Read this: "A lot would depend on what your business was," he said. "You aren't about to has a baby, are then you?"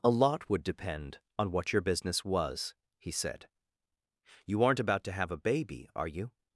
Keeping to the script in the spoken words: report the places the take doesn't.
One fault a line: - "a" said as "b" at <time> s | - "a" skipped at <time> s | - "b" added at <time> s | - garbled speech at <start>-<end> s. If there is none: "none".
- "has" said as "have" at 5.1 s
- "then" skipped at 6.1 s